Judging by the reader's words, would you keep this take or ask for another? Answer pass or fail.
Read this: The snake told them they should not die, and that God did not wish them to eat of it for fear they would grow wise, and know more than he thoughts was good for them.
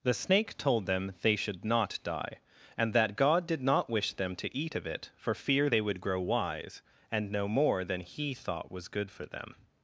fail